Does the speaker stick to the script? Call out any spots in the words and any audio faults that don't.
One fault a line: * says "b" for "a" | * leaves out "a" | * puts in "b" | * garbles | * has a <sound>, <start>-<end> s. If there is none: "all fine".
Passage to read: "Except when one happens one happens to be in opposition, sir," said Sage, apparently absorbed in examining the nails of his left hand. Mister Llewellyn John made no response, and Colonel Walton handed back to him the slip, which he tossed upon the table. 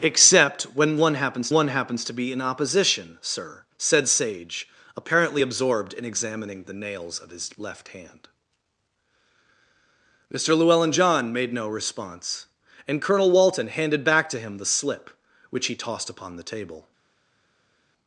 all fine